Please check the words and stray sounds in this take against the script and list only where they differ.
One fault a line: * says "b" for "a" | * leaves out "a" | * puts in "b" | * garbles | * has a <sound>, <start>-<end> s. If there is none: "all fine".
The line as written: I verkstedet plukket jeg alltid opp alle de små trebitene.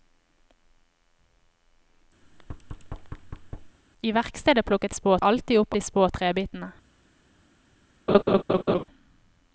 * has a thud, 2.2-3.8 s
* says "små" for "jeg"
* leaves out "alle"
* has a laugh, 8.1-8.8 s